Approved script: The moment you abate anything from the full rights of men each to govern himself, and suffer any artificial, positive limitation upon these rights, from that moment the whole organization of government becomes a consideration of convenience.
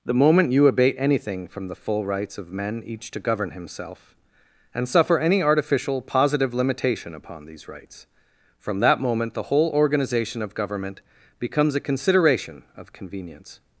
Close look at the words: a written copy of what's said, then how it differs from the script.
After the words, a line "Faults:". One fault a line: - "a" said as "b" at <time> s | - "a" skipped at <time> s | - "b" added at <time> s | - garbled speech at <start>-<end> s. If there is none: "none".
The moment you abate anything from the full rights of men each to govern himself, and suffer any artificial, positive limitation upon these rights, from that moment the whole organization of government becomes a consideration of convenience.
Faults:
none